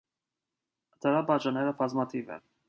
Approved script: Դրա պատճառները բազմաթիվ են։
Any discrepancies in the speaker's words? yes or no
no